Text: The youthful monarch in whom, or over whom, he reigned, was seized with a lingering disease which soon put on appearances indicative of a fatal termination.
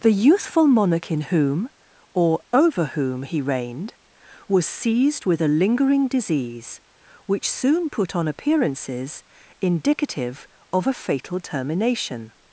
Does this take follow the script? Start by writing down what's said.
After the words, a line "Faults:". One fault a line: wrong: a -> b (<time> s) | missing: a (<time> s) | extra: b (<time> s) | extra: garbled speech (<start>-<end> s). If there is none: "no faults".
The youthful monarch in whom, or over whom, he reigned, was seized with a lingering disease which soon put on appearances indicative of a fatal termination.
Faults:
no faults